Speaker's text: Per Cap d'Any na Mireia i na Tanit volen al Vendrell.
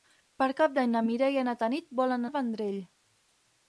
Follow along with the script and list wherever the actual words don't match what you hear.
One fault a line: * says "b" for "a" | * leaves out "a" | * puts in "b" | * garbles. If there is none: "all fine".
all fine